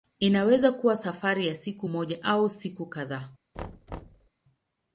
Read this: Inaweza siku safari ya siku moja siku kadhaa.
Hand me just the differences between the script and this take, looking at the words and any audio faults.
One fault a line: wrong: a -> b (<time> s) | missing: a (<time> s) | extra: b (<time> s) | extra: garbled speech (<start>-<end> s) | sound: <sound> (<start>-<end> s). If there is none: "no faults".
wrong: siku -> kuwa (0.7 s)
extra: au (2.2 s)
sound: thud (3.5-4.3 s)